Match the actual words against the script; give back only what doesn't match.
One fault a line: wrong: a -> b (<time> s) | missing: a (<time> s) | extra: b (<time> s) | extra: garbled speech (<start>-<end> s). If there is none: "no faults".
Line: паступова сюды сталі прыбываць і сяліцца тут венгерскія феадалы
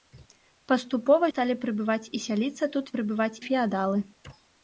missing: сюды (1.3 s)
wrong: венгерскія -> прыбываць (3.0 s)